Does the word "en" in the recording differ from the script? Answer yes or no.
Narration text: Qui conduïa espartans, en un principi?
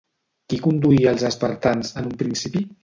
no